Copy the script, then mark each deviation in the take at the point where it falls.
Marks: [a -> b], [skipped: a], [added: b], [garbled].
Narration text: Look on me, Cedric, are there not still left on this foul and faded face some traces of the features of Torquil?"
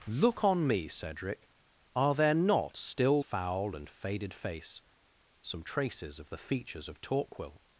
Look on me, Cedric, are there not still [skipped: left on this] foul and faded face some traces of the features of Torquil?"